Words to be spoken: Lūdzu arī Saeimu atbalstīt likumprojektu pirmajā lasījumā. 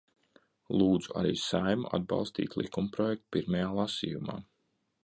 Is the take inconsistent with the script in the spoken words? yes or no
no